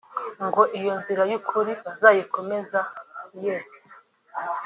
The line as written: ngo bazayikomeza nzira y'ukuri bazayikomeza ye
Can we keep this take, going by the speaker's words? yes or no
no